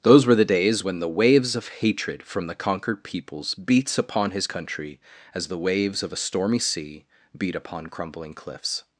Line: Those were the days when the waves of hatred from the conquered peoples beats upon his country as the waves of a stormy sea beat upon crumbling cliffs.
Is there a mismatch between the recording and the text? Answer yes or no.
no